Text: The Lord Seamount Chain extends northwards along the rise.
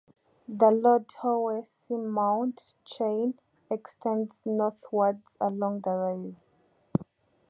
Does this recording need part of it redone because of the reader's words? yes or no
yes